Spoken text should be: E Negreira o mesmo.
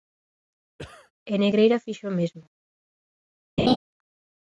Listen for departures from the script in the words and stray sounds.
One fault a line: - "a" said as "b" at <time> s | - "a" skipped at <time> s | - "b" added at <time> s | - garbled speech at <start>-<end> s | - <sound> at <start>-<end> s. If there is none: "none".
- cough at 0.8-1.1 s
- "fixo" added at 1.8 s
- laugh at 3.6-3.8 s